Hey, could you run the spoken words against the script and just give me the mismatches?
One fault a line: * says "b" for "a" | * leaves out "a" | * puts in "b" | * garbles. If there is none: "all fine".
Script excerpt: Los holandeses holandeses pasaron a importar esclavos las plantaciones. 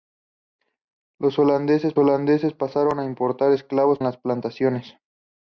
all fine